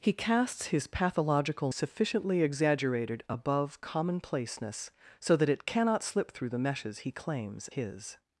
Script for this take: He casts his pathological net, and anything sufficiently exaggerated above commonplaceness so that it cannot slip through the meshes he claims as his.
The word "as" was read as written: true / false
false